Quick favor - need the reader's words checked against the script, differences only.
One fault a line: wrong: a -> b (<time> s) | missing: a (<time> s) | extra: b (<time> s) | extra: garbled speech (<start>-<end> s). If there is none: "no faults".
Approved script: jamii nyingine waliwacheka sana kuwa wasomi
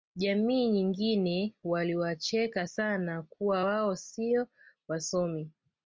extra: wao sio (3.6 s)